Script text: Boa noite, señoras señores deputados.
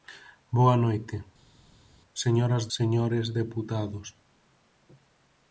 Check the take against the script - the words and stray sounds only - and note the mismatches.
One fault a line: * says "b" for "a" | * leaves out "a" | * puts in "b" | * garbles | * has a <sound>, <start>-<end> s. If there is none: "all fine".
all fine